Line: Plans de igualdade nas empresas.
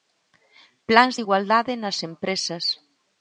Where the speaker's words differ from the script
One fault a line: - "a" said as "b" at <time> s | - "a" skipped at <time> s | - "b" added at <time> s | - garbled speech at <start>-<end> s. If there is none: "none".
none